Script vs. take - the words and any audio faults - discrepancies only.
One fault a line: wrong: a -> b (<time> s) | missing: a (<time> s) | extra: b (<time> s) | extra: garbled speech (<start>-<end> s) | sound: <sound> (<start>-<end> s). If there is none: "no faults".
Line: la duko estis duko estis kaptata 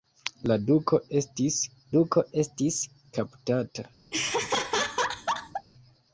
sound: laugh (4.1-5.7 s)